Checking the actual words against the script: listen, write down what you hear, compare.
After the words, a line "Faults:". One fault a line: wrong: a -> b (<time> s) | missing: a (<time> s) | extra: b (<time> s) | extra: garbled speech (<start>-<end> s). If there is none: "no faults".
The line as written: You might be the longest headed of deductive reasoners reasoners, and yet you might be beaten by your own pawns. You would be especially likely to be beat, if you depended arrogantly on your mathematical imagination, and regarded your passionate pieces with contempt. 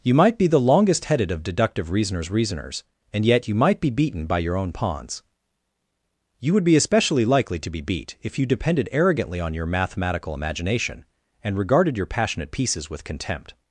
You might be the longest headed of deductive reasoners reasoners, and yet you might be beaten by your own pawns. You would be especially likely to be beat, if you depended arrogantly on your mathematical imagination, and regarded your passionate pieces with contempt.
Faults:
no faults